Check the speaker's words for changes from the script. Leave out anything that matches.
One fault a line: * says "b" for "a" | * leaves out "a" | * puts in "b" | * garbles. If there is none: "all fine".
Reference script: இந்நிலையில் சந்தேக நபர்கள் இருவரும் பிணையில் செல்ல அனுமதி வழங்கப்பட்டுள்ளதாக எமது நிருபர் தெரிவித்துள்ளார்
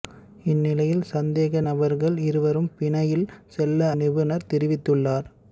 * leaves out "அனுமதி வழங்கப்பட்டுள்ளதாக எமது"